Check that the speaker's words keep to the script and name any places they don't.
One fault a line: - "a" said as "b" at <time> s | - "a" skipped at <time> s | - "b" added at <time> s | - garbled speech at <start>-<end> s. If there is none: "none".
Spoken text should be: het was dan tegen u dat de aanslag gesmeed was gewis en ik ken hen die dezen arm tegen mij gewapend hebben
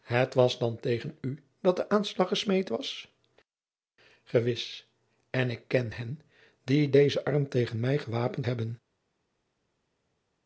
none